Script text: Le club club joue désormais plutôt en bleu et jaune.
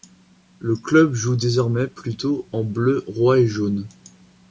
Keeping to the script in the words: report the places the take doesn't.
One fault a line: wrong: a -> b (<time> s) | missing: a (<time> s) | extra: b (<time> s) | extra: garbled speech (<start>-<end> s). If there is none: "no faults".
missing: club (1.1 s)
extra: roi (3.1 s)